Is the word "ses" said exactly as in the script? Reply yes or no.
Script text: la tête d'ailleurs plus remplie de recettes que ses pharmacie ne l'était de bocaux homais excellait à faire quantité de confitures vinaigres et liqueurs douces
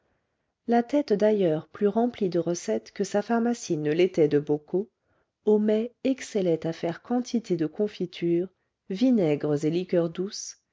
no